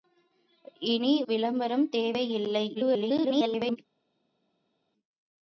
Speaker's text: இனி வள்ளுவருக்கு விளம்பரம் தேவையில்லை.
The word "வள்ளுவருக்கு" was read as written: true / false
false